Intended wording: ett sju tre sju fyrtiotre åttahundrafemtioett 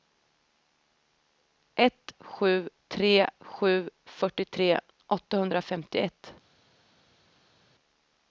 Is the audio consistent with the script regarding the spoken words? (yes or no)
yes